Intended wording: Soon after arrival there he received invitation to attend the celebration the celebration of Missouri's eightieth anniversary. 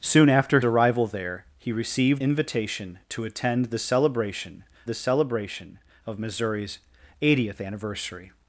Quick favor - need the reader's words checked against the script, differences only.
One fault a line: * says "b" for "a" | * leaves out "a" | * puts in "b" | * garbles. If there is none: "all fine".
all fine